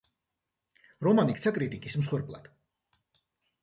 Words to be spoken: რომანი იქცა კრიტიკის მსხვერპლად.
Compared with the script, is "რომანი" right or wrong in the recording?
right